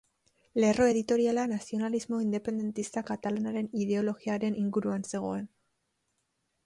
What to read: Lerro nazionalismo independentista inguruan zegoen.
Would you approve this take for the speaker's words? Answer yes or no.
no